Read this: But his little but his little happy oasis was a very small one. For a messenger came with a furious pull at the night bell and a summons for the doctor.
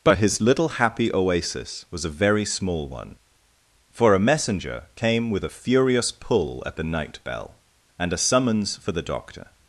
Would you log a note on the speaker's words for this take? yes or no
yes